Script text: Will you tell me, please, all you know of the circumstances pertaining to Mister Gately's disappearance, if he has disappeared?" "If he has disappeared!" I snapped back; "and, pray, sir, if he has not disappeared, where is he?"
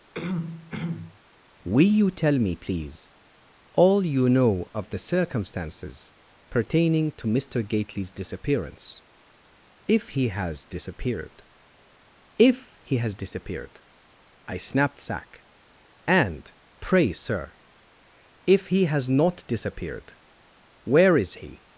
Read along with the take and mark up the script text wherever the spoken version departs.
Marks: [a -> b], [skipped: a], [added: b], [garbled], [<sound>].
[throat clearing] Will you tell me, please, all you know of the circumstances pertaining to Mister Gately's disappearance, if he has disappeared?" "If he has disappeared!" I snapped [back; -> sack] "and, pray, sir, if he has not disappeared, where is he?"